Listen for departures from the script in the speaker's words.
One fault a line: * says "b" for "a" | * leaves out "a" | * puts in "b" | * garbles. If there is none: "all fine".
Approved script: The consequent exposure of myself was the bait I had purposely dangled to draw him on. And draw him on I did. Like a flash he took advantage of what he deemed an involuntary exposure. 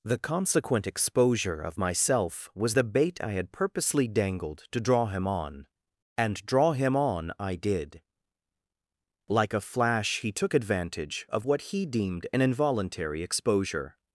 all fine